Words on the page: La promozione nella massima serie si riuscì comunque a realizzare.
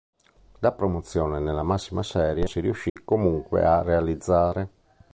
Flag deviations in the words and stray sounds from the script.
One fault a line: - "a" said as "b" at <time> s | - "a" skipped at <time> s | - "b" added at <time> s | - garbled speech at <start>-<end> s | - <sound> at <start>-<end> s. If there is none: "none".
- dropout at 2.9-3.0 s